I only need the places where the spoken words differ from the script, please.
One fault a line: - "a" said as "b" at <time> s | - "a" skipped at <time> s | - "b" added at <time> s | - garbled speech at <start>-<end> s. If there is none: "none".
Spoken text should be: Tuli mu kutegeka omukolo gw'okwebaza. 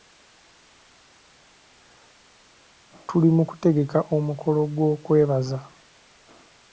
none